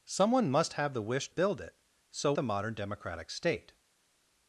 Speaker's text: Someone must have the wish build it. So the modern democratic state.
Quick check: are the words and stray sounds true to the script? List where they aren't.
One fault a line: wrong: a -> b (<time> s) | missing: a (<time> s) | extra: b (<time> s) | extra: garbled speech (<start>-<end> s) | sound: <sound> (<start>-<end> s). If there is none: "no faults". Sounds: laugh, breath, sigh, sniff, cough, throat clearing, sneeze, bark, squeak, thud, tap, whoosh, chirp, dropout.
no faults